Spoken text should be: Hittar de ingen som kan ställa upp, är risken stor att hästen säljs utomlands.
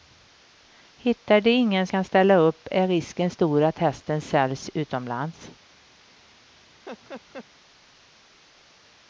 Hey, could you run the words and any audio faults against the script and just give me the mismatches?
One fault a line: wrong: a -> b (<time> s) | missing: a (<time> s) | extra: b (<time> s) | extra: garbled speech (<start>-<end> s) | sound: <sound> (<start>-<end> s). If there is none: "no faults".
missing: som (1.9 s)
sound: laugh (6.8-7.5 s)